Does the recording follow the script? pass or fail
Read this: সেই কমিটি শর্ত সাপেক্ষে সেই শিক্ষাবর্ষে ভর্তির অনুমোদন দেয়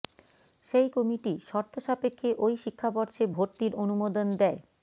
fail